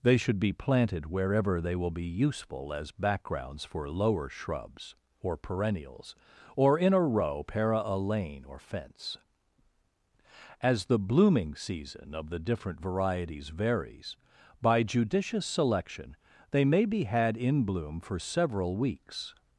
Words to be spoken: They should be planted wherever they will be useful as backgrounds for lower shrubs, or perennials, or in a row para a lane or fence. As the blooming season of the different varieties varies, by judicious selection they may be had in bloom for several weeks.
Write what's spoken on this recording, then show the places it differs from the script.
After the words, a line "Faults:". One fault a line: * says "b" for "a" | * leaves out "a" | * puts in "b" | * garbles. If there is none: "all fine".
They should be planted wherever they will be useful as backgrounds for lower shrubs, or perennials, or in a row para a lane or fence. As the blooming season of the different varieties varies, by judicious selection they may be had in bloom for several weeks.
Faults:
all fine